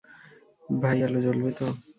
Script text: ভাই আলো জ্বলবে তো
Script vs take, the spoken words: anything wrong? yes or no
no